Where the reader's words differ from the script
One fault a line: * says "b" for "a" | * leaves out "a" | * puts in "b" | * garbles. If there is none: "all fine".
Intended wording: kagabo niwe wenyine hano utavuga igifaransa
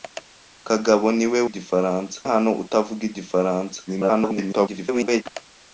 * says "igifaransa" for "wenyine"
* garbles